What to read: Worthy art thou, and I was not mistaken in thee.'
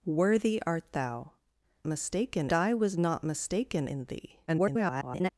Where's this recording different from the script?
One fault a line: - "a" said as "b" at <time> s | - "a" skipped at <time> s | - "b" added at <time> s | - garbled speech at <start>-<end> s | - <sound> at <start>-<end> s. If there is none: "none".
- "and" said as "mistaken" at 1.9 s
- garbled speech at 4.5-5.3 s